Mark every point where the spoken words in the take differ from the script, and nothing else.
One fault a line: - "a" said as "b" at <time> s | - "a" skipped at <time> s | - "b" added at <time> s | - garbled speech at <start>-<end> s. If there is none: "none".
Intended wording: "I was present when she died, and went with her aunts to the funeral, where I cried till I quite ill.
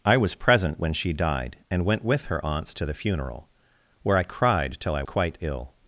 none